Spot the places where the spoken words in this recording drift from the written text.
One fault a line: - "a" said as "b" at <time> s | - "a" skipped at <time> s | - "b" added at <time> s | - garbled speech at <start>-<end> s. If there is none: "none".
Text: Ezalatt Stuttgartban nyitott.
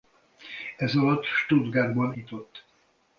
none